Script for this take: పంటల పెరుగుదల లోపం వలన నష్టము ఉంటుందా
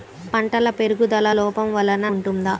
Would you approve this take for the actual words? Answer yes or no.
no